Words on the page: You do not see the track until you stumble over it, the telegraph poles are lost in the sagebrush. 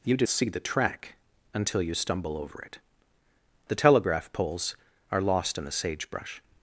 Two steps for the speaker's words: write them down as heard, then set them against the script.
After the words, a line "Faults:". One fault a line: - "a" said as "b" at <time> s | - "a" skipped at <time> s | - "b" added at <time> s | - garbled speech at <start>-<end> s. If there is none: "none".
You do see the track until you stumble over it, the telegraph poles are lost in the sagebrush.
Faults:
- "not" skipped at 0.2 s